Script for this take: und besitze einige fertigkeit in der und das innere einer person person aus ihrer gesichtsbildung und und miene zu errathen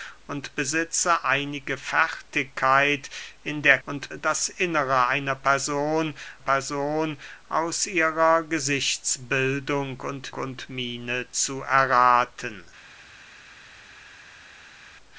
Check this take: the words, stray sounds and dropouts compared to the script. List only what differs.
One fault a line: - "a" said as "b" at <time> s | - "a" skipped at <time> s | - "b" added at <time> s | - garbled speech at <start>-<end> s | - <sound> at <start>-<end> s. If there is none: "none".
none